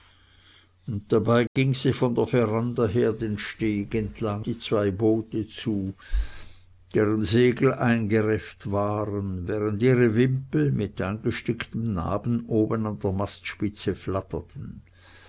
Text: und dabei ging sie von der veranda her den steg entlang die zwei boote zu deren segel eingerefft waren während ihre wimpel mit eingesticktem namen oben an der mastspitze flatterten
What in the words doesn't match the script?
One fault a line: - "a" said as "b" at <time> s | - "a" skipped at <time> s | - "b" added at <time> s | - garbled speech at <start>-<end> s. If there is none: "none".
none